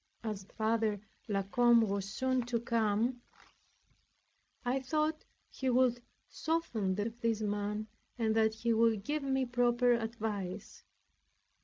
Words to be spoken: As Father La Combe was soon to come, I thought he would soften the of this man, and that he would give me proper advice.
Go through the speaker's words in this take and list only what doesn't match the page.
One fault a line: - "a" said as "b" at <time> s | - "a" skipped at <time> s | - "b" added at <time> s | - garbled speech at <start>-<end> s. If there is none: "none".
none